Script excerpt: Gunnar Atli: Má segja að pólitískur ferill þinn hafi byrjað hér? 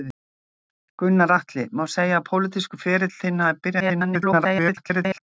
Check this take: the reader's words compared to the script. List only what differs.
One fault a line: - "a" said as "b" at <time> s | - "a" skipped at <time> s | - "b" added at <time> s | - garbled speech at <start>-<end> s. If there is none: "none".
- garbled speech at 3.8-5.2 s